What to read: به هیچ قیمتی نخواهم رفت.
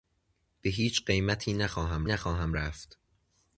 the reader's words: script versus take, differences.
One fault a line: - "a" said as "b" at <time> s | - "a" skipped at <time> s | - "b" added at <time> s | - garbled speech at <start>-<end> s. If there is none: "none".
- "نخواهم" added at 2.0 s